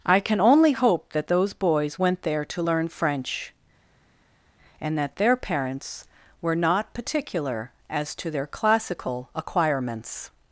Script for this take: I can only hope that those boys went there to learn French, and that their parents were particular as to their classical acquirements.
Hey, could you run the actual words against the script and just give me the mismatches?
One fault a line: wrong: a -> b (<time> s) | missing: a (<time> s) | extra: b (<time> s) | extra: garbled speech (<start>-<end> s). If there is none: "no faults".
extra: not (6.6 s)